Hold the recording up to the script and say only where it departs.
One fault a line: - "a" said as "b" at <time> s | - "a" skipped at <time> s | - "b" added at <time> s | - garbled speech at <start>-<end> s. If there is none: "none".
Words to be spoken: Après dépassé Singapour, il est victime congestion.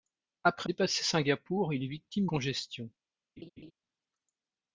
none